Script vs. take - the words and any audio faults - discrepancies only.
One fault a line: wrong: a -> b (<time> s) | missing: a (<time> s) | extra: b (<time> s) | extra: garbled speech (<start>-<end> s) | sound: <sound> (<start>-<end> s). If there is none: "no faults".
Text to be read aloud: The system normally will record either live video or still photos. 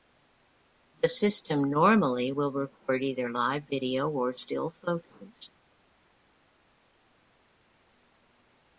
no faults